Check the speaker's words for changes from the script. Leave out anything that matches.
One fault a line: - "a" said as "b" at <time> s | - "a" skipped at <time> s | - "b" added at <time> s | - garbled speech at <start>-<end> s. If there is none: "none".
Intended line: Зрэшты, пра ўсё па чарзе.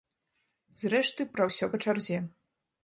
none